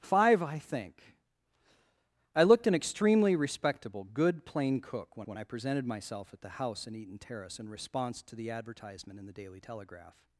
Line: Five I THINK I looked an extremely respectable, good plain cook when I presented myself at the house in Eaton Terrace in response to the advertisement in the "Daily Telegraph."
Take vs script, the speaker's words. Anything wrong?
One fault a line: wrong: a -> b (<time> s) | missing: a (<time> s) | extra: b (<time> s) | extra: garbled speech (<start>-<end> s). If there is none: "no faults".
extra: when (5.3 s)